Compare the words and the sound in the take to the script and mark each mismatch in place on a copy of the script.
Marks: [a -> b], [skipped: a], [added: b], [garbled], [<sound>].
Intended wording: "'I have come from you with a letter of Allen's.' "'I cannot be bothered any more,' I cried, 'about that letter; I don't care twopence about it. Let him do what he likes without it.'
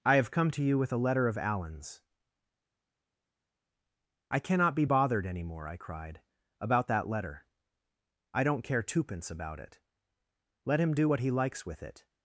"'I have come [from -> to] you with a letter of Allen's.' "'I cannot be bothered any more,' I cried, 'about that letter; I don't care twopence about it. Let him do what he likes [without -> with] it.'